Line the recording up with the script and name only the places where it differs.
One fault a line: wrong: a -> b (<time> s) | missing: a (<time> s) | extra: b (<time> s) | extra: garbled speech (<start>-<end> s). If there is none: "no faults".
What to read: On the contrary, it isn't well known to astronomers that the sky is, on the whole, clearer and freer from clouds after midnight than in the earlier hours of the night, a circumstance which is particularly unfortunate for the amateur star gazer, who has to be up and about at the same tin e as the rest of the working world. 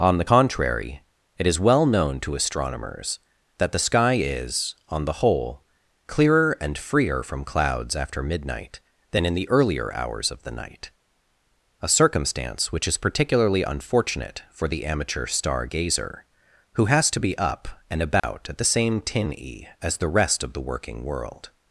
wrong: isn't -> is (1.5 s)